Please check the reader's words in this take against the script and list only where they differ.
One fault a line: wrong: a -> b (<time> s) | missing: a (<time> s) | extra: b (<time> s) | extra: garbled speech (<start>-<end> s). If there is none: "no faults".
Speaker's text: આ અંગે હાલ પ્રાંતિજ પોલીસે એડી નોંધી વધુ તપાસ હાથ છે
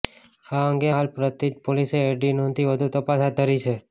extra: ધરી (3.4 s)